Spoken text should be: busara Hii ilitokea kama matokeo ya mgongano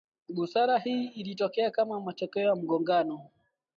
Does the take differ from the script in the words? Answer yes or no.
no